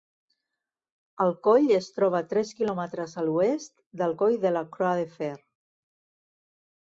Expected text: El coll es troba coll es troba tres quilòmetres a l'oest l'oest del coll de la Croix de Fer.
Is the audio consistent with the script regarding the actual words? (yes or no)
no